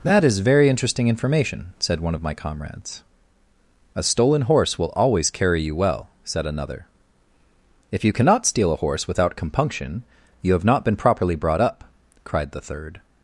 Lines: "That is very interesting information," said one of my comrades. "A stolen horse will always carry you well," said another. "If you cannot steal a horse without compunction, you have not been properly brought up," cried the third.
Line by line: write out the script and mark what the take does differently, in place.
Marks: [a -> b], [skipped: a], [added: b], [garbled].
"That is very interesting information," said one of my comrades. "A stolen horse will always carry you well," said another. "If you cannot steal a horse without compunction, you have not been properly brought up," cried the third.